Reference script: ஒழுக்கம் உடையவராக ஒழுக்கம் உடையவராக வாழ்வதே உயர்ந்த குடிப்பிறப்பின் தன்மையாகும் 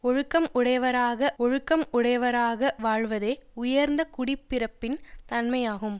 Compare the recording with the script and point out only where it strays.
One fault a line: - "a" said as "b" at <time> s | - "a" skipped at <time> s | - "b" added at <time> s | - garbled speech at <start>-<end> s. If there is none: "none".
none